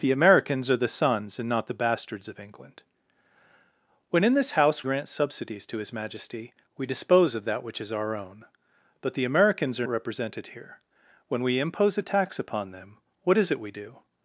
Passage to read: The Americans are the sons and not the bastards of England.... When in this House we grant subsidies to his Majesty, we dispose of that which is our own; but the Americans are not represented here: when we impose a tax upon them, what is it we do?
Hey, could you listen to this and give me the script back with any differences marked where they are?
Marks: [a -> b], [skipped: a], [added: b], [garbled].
The Americans are the sons and not the bastards of England.... When in this House [skipped: we] grant subsidies to his Majesty, we dispose of that which is our own; but the Americans are [skipped: not] represented here: when we impose a tax upon them, what is it we do?